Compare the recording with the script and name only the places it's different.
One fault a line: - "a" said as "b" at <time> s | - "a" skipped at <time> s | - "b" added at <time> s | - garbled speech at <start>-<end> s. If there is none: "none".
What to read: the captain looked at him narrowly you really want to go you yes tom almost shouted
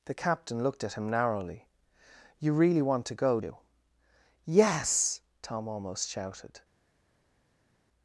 none